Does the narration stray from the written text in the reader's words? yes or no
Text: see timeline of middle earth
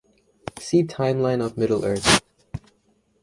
no